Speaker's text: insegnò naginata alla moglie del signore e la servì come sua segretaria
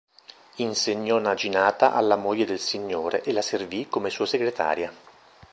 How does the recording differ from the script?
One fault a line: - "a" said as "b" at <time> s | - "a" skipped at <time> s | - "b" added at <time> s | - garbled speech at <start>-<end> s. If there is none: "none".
none